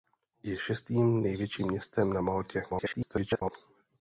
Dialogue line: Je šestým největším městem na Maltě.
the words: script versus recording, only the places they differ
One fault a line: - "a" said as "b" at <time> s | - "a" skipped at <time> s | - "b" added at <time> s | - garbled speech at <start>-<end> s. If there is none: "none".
- garbled speech at 2.7-3.5 s